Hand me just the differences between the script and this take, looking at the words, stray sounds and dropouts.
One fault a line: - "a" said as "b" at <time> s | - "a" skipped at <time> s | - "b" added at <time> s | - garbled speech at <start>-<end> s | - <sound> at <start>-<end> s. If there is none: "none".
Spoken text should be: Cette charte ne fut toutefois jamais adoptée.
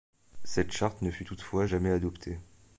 none